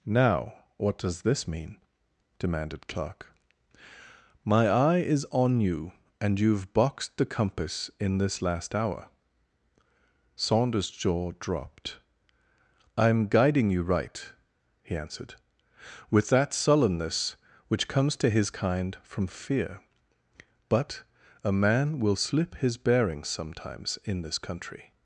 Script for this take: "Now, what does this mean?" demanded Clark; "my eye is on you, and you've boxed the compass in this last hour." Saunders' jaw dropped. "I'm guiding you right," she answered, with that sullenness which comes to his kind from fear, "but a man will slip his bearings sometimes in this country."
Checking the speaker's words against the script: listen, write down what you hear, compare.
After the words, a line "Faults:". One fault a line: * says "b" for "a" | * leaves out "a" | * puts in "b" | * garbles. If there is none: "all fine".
"Now, what does this mean?" demanded Clark; "my eye is on you, and you've boxed the compass in this last hour." Saunders' jaw dropped. "I'm guiding you right," he answered, with that sullenness which comes to his kind from fear, "but a man will slip his bearings sometimes in this country."
Faults:
* says "he" for "she"